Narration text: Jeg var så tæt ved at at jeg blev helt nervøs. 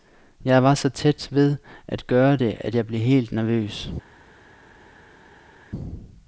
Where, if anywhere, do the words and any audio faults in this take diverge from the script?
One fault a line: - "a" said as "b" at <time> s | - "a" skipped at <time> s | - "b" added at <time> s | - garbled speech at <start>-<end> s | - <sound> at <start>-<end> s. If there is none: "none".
- "gøre det" added at 2.1 s